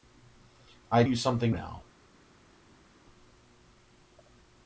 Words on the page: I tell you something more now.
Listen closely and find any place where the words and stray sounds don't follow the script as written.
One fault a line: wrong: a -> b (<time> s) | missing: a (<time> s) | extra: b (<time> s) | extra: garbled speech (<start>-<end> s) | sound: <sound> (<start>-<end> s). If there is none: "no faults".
missing: tell (1.0 s)
missing: more (1.5 s)